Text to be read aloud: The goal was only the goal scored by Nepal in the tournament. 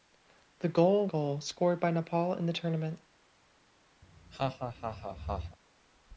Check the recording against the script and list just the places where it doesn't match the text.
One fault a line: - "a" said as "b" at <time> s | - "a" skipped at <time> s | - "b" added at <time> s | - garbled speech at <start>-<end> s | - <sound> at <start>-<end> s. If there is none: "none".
- "was only the" skipped at 1.1 s
- laugh at 4.0-5.6 s